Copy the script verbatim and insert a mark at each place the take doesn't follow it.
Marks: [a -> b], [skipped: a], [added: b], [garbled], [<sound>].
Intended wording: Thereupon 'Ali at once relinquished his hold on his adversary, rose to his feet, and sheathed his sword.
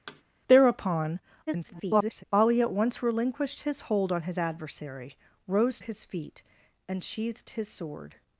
[thud] Thereupon [garbled] 'Ali at once relinquished his hold on his adversary, rose [skipped: to] his feet, and sheathed his sword.